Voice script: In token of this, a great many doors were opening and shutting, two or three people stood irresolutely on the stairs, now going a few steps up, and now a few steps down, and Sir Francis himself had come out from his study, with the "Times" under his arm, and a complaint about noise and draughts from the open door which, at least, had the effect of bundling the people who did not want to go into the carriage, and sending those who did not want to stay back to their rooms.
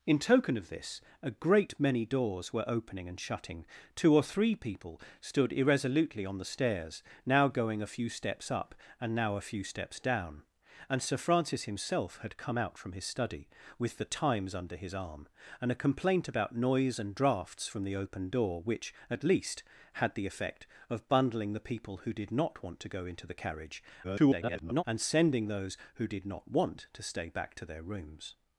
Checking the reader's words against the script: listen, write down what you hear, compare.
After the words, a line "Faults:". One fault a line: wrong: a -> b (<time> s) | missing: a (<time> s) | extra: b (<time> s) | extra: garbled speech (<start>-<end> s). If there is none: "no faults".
In token of this, a great many doors were opening and shutting, two or three people stood irresolutely on the stairs, now going a few steps up, and now a few steps down, and Sir Francis himself had come out from his study, with the "Times" under his arm, and a complaint about noise and draughts from the open door which, at least, had the effect of bundling the people who did not want to go into the carriage, [garbled] and sending those who did not want to stay back to their rooms.
Faults:
extra: garbled speech (24.0-24.8 s)